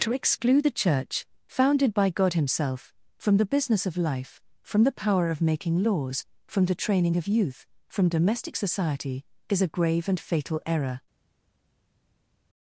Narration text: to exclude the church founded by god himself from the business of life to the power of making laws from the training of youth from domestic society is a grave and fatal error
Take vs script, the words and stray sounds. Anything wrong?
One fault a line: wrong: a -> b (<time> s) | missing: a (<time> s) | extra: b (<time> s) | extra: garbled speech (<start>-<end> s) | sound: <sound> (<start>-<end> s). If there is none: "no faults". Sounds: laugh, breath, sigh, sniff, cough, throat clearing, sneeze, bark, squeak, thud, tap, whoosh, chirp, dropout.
wrong: to -> from (4.6 s)